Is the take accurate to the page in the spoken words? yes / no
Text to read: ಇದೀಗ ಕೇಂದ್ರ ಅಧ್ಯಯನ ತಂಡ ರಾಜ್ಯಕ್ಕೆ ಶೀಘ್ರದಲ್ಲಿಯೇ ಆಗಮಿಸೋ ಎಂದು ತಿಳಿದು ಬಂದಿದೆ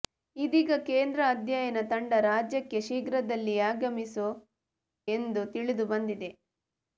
yes